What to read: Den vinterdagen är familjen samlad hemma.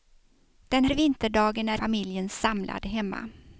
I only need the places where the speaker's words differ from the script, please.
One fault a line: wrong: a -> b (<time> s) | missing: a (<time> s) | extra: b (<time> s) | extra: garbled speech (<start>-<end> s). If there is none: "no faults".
no faults